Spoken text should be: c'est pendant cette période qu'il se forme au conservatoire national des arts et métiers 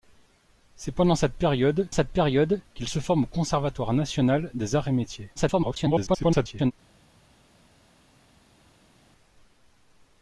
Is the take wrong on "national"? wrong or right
right